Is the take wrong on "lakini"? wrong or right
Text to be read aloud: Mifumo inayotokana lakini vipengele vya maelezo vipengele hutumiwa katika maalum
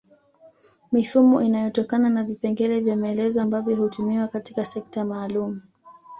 wrong